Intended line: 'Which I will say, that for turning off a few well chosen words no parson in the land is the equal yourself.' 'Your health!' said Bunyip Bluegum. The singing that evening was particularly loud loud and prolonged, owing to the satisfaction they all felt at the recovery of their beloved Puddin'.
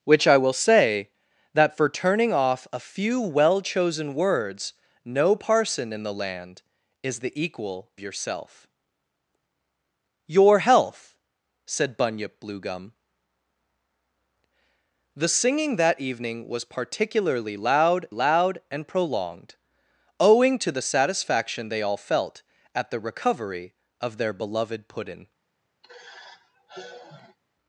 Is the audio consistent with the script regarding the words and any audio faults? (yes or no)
no